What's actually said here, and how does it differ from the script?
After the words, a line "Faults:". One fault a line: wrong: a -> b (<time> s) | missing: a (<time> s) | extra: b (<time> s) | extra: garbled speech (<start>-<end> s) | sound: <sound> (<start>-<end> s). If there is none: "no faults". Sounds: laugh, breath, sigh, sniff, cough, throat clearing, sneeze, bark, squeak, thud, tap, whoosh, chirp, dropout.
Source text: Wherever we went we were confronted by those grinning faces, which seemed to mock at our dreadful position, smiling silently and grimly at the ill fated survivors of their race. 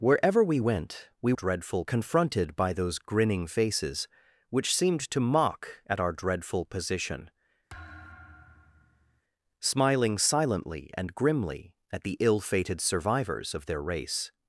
Wherever we went we dreadful confronted by those grinning faces, which seemed to mock at our dreadful position, smiling silently and grimly at the ill fated survivors of their race.
Faults:
wrong: were -> dreadful (1.3 s)
sound: thud (7.7-9.2 s)